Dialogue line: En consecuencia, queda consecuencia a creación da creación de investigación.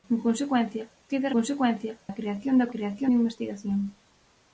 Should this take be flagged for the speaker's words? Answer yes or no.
no